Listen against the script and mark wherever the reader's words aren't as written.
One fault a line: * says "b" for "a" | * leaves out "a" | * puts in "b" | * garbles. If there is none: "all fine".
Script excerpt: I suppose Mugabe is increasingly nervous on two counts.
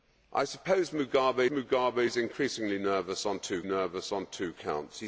* puts in "Mugabe"
* puts in "nervous on two"